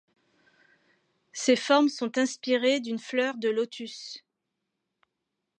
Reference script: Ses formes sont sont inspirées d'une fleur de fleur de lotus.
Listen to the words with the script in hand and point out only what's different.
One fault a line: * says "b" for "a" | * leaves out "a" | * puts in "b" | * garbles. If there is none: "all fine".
* leaves out "sont"
* leaves out "fleur de"